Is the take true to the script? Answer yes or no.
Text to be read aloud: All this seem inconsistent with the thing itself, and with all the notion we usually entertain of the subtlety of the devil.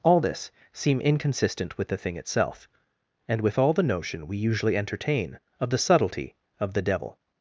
yes